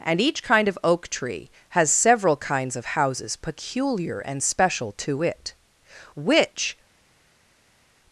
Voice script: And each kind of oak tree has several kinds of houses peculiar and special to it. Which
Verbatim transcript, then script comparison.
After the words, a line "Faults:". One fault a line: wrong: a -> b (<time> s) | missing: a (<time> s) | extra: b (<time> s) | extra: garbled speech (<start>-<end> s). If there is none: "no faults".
And each kind of oak tree has several kinds of houses peculiar and special to it. Which
Faults:
no faults